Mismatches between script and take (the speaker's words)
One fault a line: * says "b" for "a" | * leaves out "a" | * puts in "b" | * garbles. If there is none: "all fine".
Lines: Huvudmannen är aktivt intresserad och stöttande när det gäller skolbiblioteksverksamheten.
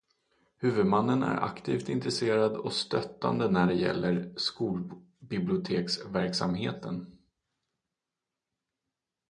all fine